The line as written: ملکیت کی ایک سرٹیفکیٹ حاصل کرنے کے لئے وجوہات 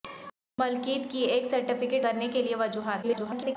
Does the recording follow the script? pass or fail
fail